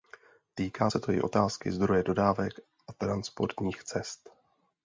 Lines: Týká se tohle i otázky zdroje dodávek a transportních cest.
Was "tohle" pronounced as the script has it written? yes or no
no